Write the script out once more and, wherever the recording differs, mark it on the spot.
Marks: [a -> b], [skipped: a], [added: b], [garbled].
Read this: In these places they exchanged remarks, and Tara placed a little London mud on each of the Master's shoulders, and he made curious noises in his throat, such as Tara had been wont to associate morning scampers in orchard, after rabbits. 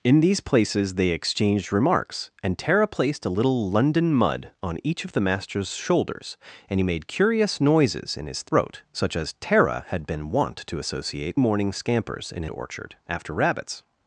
In these places they exchanged remarks, and Tara placed a little London mud on each of the Master's shoulders, and he made curious noises in his throat, such as Tara had been wont to associate morning scampers in orchard, after rabbits.